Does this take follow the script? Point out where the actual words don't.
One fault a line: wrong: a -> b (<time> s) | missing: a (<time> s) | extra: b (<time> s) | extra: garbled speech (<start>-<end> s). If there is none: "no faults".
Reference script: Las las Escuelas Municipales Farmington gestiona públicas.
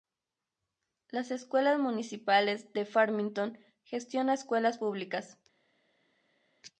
missing: las (1.3 s)
extra: de (2.7 s)
extra: escuelas (4.3 s)